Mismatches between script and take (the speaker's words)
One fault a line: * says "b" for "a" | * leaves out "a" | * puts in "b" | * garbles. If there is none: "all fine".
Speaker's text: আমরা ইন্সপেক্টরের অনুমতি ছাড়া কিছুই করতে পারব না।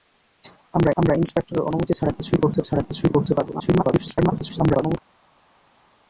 * puts in "আমরা"
* puts in "ছাড়া কিছুই করতে"
* garbles